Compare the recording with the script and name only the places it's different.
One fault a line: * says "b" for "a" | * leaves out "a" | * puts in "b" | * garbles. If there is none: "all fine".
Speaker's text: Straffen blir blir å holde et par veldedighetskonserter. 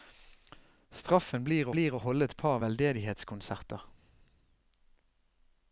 all fine